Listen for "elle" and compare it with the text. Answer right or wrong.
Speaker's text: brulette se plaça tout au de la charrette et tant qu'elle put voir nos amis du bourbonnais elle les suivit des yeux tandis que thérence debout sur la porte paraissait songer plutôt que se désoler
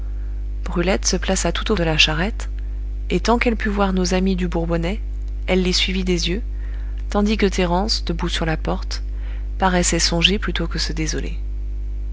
right